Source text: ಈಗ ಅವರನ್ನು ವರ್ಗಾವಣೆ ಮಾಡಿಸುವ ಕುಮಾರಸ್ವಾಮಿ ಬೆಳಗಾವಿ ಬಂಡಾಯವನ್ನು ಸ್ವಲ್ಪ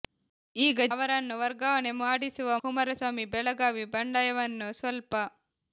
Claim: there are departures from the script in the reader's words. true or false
false